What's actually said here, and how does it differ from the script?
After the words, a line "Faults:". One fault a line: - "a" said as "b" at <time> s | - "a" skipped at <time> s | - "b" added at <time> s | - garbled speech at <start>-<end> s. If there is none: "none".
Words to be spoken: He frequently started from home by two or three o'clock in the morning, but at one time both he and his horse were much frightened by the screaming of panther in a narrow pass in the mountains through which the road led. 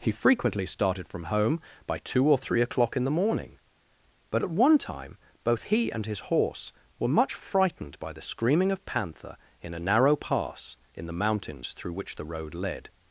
He frequently started from home by two or three o'clock in the morning, but at one time both he and his horse were much frightened by the screaming of panther in a narrow pass in the mountains through which the road led.
Faults:
none